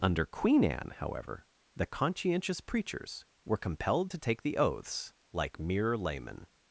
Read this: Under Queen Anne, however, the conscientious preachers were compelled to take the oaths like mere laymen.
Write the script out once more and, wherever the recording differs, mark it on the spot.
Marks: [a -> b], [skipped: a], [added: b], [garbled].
Under Queen Anne, however, the conscientious preachers were compelled to take the oaths like mere laymen.